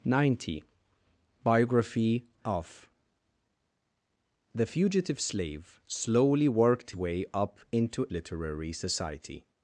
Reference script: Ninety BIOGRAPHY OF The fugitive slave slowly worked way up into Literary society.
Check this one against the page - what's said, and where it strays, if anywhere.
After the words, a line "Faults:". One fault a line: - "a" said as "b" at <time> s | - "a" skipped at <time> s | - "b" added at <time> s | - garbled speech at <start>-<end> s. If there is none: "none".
Ninety BIOGRAPHY OF The fugitive slave slowly worked way up into Literary society.
Faults:
none